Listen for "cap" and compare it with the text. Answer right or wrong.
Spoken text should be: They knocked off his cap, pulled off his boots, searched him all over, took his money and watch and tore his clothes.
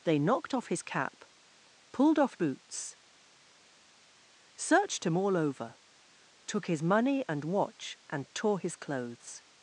right